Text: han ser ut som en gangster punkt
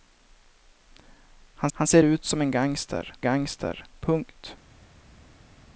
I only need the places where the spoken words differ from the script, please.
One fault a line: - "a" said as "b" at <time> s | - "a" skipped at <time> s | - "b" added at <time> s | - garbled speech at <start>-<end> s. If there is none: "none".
- "han" added at 1.7 s
- "gangster" added at 3.2 s